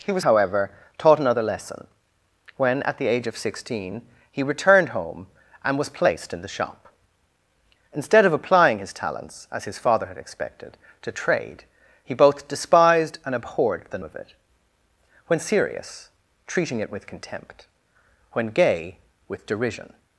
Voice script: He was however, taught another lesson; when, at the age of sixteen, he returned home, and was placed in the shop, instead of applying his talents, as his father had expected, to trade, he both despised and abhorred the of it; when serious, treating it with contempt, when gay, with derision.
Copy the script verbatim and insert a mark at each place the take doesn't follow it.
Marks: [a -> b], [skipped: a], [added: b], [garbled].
He was however, taught another lesson; when, at the age of sixteen, he returned home, and was placed in the shop, instead of applying his talents, as his father had expected, to trade, he both despised and abhorred the of it; when serious, treating it with contempt, when gay, with derision.